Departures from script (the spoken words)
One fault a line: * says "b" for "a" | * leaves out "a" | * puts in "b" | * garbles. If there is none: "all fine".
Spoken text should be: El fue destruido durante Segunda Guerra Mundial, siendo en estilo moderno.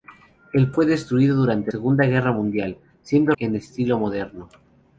all fine